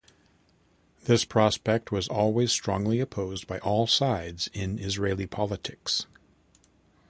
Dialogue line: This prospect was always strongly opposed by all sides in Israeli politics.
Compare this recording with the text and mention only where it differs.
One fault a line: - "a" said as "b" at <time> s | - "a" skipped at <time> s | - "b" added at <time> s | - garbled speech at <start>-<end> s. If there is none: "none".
none